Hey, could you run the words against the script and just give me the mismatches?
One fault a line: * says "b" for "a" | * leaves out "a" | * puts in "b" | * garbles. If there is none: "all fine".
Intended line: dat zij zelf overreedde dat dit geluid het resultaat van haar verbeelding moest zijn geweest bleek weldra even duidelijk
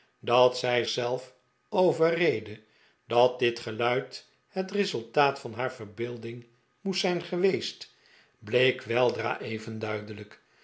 all fine